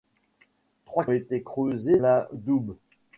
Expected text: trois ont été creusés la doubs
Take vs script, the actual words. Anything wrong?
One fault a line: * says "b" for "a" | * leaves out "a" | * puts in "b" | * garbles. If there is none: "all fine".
all fine